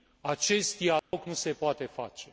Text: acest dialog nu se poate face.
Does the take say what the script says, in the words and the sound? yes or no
no